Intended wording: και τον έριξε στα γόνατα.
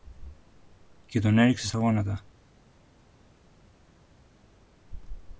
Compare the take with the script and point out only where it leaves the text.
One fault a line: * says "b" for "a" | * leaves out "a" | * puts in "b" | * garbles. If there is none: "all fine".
all fine